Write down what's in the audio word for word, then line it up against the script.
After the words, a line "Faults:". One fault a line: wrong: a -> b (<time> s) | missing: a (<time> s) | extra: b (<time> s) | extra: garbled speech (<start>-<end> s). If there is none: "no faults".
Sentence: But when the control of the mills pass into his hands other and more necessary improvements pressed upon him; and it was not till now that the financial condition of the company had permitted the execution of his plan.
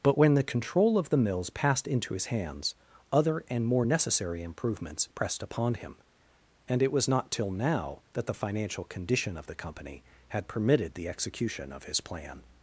But when the control of the mills passed into his hands other and more necessary improvements pressed upon him; and it was not till now that the financial condition of the company had permitted the execution of his plan.
Faults:
wrong: pass -> passed (1.5 s)